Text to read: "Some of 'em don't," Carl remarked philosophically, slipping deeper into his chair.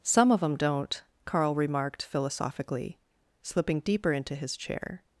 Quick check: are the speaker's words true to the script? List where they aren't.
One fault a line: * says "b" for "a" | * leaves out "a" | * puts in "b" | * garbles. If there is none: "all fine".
all fine